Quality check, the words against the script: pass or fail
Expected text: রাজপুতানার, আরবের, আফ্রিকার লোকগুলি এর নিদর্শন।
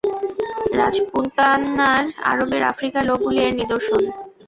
pass